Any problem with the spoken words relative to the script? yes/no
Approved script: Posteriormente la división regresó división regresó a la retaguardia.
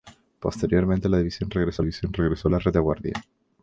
no